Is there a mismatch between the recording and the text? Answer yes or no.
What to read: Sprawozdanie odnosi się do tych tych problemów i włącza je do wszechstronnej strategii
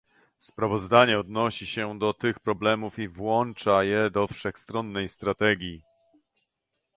yes